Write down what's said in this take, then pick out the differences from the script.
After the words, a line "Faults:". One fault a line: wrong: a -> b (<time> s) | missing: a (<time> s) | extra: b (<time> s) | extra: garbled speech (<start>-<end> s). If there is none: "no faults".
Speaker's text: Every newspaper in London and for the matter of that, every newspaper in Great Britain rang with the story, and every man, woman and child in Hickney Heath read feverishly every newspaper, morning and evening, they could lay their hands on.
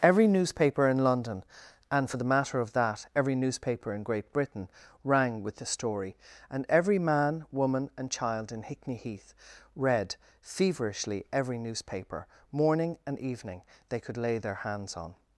Every newspaper in London and for the matter of that, every newspaper in Great Britain rang with the story, and every man, woman and child in Hickney Heath read feverishly every newspaper, morning and evening, they could lay their hands on.
Faults:
no faults